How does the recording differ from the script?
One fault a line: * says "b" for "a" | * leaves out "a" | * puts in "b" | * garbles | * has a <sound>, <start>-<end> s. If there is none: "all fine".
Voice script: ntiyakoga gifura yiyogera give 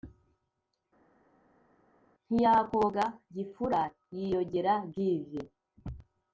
all fine